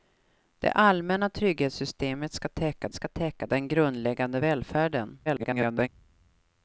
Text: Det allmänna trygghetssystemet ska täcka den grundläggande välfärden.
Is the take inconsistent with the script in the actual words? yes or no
yes